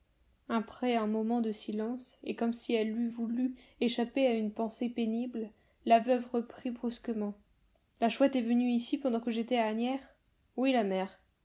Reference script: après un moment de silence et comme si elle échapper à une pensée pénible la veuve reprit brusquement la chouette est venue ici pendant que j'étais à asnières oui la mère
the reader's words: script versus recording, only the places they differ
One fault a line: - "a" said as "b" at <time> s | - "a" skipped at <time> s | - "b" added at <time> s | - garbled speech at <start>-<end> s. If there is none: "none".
- "eût voulu" added at 3.0 s